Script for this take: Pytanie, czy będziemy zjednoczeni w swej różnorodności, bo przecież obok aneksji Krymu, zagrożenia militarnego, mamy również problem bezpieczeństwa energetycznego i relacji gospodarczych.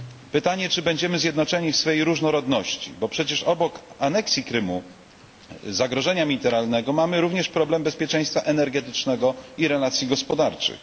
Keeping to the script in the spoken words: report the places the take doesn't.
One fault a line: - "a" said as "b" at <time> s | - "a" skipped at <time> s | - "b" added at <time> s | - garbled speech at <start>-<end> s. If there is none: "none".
none